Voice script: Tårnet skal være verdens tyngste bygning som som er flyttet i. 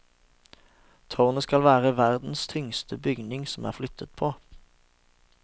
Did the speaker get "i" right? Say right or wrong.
wrong